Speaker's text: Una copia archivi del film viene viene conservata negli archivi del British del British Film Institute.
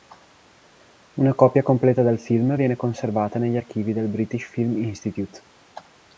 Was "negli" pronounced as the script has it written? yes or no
yes